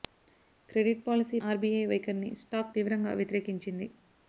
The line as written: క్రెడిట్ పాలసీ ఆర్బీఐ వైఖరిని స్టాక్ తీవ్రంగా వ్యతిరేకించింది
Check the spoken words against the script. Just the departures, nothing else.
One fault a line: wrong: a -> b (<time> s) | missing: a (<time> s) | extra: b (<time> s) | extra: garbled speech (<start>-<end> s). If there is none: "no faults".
no faults